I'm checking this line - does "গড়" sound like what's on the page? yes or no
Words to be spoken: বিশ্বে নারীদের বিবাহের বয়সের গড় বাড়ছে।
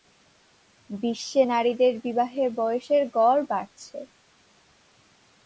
yes